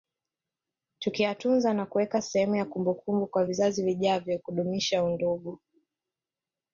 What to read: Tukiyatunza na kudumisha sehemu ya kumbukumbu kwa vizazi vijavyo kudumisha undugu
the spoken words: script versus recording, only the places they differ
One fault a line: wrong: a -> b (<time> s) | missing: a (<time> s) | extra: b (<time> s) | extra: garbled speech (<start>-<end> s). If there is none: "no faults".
wrong: kudumisha -> kuweka (1.9 s)